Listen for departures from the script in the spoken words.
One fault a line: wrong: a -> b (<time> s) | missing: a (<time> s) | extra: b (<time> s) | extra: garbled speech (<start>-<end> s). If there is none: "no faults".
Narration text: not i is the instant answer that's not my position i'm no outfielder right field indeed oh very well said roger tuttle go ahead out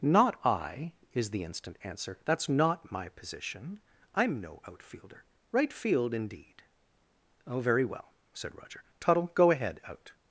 no faults